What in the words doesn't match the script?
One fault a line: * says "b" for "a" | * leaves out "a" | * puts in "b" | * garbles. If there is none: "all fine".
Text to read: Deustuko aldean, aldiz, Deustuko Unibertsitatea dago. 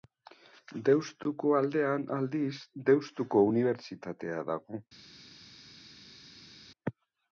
all fine